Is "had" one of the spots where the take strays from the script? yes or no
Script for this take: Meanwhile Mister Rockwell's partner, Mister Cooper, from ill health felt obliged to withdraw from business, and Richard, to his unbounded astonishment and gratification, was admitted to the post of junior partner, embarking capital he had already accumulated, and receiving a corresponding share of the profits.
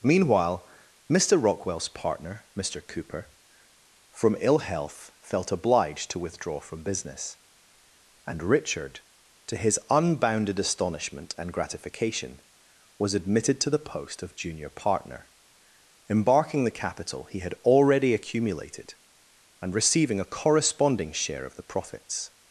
no